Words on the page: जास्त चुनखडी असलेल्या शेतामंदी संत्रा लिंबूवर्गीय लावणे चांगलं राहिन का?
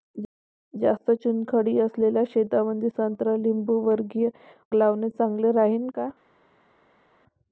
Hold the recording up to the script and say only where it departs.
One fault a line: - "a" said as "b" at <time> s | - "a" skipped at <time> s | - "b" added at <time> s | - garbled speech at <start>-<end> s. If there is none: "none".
none